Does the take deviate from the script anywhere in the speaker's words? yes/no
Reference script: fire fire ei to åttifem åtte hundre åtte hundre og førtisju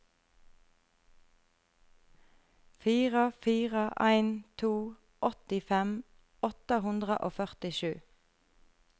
yes